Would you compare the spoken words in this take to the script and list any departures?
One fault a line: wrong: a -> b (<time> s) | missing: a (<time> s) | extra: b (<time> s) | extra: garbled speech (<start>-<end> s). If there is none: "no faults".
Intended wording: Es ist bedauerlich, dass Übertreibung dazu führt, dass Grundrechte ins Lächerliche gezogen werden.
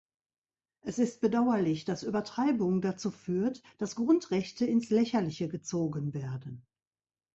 no faults